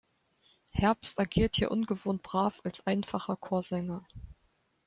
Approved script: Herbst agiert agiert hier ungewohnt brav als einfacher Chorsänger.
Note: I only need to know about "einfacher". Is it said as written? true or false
true